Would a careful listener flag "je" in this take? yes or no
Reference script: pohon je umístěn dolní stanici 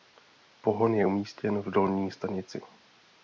no